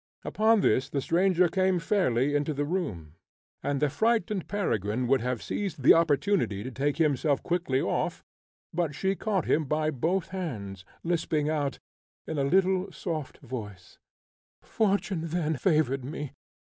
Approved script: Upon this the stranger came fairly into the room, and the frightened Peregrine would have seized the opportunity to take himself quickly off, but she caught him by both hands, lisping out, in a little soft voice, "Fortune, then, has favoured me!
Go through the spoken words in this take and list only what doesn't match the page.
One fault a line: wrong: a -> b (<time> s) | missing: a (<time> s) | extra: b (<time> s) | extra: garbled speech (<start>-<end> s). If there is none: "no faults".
missing: has (15.6 s)